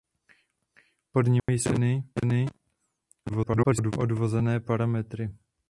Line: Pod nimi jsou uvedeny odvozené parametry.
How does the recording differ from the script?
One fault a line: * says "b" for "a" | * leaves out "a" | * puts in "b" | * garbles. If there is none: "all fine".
* garbles